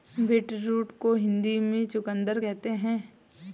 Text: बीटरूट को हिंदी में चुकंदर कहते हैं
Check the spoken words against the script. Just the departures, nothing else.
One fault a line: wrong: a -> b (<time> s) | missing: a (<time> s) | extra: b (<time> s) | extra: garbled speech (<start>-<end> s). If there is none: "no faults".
no faults